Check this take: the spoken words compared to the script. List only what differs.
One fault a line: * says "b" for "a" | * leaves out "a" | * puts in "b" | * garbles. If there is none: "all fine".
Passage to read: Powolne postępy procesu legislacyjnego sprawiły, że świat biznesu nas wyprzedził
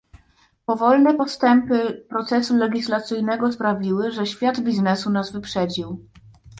all fine